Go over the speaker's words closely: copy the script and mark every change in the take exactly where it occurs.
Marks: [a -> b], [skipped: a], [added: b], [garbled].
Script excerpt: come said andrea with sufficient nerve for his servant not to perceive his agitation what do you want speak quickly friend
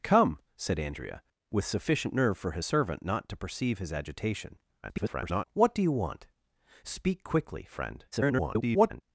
come said andrea with sufficient nerve for his servant not to perceive his agitation [garbled] what do you want speak quickly friend [garbled]